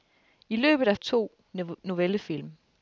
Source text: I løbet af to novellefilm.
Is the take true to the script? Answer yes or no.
yes